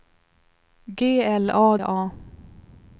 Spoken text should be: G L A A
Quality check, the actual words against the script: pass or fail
pass